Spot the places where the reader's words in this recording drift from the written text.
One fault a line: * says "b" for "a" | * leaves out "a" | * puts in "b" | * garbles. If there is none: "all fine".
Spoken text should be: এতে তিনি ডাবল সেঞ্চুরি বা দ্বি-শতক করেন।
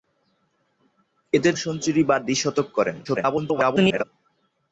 * leaves out "তিনি ডাবল"
* garbles